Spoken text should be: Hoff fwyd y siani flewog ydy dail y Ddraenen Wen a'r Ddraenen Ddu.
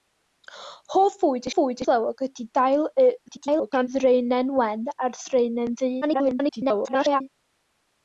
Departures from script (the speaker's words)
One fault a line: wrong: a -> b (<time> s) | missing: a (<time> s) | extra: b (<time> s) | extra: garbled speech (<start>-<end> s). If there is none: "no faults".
wrong: siani -> fwyd (1.6 s)
extra: garbled speech (3.3-3.9 s)
extra: garbled speech (6.0-7.2 s)